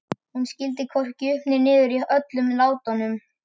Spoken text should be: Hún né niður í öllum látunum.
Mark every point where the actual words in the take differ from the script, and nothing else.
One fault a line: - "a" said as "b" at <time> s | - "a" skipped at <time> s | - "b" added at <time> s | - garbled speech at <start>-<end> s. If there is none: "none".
- "skildi hvorki upp" added at 0.5 s